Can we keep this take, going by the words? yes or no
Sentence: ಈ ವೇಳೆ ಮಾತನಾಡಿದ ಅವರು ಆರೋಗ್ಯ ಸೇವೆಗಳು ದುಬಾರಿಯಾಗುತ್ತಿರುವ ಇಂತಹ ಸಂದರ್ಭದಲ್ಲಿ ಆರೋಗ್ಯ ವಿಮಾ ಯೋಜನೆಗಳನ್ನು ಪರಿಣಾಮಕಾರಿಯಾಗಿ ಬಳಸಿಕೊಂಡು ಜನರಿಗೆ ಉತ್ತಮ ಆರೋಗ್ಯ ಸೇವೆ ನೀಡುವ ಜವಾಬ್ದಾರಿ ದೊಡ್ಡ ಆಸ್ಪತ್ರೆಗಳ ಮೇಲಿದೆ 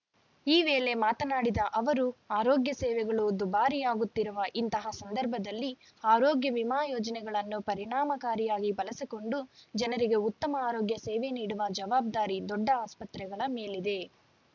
yes